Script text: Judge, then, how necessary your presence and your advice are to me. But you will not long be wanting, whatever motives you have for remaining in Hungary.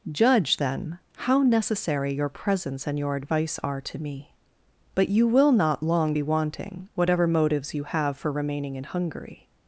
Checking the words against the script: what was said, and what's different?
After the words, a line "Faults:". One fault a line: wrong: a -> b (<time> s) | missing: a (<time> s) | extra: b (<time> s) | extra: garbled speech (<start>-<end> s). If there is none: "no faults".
Judge, then, how necessary your presence and your advice are to me. But you will not long be wanting, whatever motives you have for remaining in Hungary.
Faults:
no faults